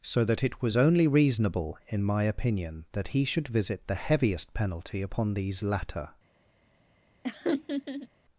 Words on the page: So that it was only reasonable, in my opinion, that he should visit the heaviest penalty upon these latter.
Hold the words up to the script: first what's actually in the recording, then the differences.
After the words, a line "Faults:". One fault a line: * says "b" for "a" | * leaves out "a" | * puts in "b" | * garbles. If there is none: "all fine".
So that it was only reasonable, in my opinion, that he should visit the heaviest penalty upon these latter.
Faults:
all fine